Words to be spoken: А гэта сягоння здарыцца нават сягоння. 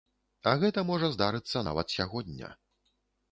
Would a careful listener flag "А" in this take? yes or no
no